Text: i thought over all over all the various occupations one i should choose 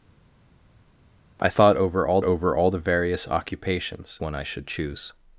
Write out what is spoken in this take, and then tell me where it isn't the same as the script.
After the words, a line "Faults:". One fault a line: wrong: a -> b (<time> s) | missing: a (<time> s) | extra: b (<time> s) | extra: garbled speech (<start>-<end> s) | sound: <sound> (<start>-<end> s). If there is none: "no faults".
i thought over all over all the various occupations one i should choose
Faults:
no faults